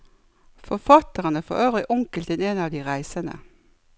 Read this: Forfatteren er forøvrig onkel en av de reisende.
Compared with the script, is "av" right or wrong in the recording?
right